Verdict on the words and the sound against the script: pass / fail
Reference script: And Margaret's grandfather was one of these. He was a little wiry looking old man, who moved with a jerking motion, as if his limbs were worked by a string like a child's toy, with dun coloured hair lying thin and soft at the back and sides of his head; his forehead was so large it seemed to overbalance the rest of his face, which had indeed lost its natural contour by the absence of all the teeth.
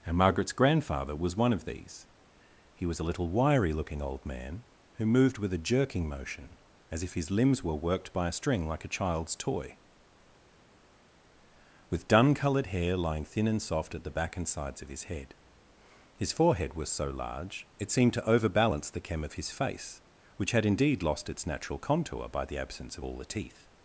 fail